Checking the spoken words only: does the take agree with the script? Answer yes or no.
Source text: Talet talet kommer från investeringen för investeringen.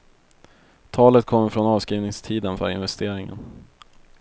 no